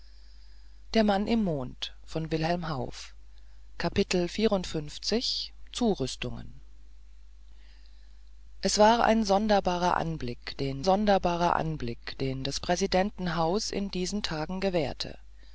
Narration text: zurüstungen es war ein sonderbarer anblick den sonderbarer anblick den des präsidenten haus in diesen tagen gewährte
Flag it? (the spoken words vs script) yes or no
no